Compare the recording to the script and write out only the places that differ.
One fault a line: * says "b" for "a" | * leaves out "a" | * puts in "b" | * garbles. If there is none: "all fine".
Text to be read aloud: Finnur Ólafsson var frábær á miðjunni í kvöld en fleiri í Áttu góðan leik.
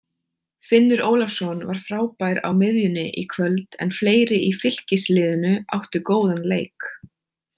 * puts in "Fylkisliðinu"